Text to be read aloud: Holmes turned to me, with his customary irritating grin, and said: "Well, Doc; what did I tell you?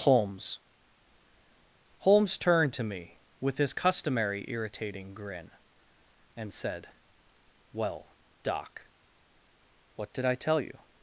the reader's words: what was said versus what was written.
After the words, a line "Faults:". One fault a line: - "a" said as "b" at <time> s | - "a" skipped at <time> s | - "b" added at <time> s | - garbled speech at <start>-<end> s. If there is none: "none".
Holmes holmes turned to me, with his customary irritating grin, and said: "Well, Doc; what did I tell you?
Faults:
- "holmes" added at 2.0 s